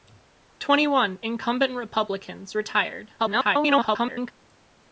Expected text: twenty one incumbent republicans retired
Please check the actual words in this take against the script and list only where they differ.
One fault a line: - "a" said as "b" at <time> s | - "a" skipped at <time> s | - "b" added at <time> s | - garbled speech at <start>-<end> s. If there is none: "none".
- garbled speech at 3.2-4.3 s